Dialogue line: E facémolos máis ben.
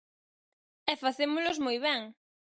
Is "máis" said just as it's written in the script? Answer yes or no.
no